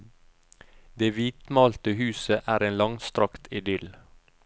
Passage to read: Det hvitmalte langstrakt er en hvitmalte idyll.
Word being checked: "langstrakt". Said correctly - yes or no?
no